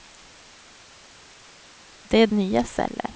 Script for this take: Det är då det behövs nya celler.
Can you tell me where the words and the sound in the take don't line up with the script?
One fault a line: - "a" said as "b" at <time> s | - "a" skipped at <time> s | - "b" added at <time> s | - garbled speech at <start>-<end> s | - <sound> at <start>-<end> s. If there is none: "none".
- "då det behövs" skipped at 2.3 s